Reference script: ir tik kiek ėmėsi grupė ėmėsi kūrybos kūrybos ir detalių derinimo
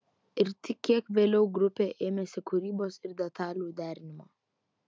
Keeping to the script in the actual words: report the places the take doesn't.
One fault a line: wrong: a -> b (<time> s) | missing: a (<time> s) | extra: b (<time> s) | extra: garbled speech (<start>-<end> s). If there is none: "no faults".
wrong: ėmėsi -> vėliau (1.2 s)
missing: kūrybos (3.0 s)